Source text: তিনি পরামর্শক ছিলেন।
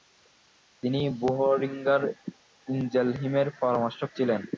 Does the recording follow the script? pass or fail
fail